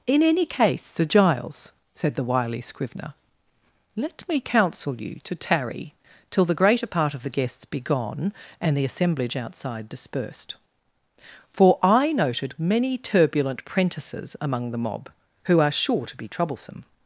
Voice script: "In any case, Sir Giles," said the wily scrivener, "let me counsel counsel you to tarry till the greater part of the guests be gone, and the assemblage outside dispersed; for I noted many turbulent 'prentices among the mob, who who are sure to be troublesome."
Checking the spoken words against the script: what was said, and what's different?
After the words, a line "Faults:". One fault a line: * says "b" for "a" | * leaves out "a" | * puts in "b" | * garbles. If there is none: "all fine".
"In any case, Sir Giles," said the wily scrivener, "let me counsel you to tarry till the greater part of the guests be gone, and the assemblage outside dispersed; for I noted many turbulent 'prentices among the mob, who are sure to be troublesome."
Faults:
* leaves out "counsel"
* leaves out "who"